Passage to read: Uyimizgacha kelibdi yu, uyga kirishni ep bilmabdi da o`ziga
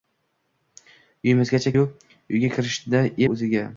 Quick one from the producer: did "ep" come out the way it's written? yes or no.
no